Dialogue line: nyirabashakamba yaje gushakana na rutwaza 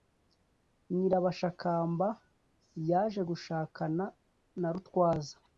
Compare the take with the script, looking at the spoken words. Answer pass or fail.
pass